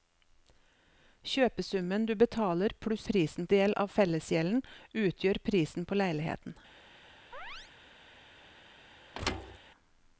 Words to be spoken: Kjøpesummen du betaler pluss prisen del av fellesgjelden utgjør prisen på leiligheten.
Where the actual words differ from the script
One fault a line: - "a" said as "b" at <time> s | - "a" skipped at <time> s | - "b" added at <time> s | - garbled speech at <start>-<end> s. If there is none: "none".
none